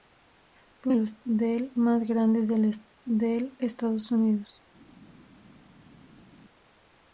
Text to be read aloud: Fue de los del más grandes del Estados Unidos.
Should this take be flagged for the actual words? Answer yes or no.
no